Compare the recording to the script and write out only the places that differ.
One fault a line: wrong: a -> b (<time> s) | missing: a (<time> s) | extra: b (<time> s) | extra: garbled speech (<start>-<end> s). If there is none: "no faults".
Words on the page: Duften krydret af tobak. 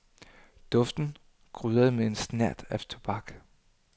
extra: med en snert (1.9 s)